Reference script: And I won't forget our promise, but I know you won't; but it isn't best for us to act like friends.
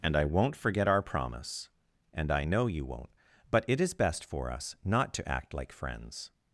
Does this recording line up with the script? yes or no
no